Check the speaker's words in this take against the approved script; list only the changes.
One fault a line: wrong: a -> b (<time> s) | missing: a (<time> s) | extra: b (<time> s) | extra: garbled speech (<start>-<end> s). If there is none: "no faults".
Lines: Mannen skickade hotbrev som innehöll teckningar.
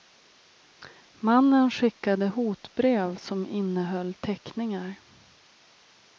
no faults